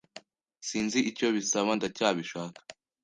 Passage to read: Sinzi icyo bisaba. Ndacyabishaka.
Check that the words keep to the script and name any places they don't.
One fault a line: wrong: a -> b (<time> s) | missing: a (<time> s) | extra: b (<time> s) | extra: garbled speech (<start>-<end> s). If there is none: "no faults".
no faults